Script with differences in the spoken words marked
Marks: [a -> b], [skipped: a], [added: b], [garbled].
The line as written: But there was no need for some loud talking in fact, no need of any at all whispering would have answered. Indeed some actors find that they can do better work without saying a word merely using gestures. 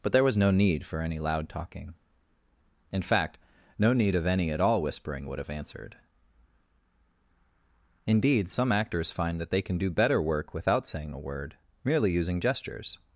But there was no need for [some -> any] loud talking in fact, no need of any at all whispering would have answered. Indeed some actors find that they can do better work without saying a word merely using gestures.